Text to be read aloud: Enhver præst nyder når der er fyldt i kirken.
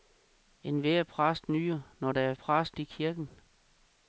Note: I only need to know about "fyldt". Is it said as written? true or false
false